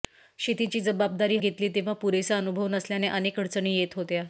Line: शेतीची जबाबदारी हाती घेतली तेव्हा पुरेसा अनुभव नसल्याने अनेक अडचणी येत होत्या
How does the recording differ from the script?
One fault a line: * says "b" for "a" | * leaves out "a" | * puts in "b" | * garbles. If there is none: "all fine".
* leaves out "हाती"